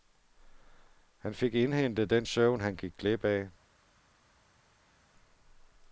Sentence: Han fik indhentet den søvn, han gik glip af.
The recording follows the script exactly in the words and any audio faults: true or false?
true